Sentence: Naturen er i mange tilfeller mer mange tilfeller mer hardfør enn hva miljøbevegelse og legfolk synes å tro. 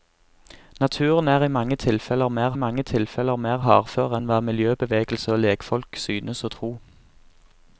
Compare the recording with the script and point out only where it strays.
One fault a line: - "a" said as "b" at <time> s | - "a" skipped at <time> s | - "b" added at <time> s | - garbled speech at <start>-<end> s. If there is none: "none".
none